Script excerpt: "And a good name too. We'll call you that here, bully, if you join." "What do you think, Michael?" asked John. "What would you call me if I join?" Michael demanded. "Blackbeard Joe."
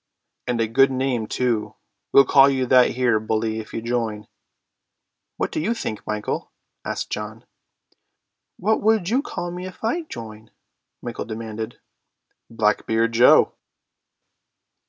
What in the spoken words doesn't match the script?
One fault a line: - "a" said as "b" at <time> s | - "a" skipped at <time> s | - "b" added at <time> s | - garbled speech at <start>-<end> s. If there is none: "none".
none